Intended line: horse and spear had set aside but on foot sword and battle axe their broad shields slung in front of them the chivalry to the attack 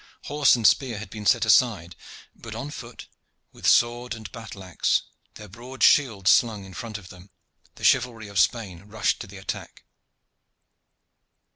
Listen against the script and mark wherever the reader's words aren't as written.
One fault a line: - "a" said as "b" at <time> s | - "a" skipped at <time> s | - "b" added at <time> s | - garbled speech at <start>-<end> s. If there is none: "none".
- "been" added at 1.1 s
- "with" added at 3.5 s
- "of spain rushed" added at 8.3 s